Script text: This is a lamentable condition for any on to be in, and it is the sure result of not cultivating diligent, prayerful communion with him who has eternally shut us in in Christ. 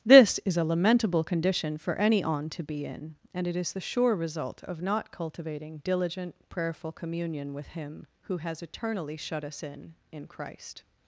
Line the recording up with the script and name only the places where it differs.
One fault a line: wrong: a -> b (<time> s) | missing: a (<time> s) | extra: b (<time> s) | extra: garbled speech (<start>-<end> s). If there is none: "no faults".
no faults